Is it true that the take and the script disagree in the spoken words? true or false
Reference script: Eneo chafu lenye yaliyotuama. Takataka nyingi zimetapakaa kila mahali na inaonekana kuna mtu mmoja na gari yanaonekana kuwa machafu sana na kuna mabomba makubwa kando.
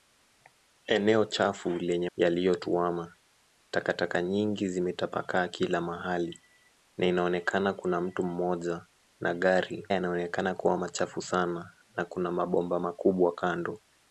false